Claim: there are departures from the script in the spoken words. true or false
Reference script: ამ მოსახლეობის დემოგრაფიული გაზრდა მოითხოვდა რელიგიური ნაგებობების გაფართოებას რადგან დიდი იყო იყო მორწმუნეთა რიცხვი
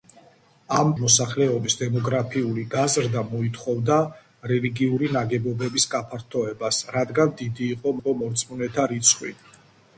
false